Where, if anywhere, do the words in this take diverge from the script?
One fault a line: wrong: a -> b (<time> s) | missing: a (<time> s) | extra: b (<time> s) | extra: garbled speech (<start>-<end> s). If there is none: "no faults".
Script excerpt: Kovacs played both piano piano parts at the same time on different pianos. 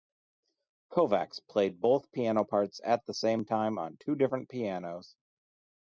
missing: piano (2.4 s)
extra: two (4.0 s)